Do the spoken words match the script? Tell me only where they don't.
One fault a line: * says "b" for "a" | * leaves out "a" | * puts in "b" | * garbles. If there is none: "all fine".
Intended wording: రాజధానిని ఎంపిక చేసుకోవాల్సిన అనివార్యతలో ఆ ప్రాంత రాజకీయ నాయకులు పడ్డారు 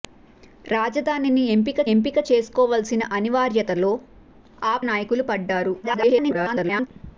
* puts in "ఎంపిక"
* leaves out "ప్రాంత రాజకీయ"
* garbles